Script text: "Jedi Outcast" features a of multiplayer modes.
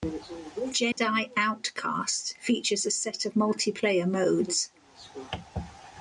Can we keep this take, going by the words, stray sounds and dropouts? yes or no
no